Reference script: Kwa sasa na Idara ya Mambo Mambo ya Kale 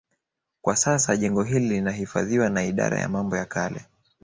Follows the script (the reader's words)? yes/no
no